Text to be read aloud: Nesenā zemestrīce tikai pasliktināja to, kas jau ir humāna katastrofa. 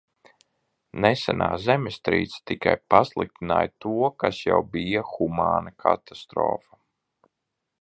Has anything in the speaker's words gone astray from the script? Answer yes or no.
yes